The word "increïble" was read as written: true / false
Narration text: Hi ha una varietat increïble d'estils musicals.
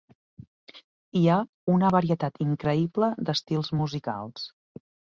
true